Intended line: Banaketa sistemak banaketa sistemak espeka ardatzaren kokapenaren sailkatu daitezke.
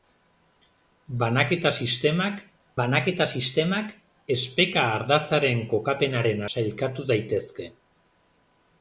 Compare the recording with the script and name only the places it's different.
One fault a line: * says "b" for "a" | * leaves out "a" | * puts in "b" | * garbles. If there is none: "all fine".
all fine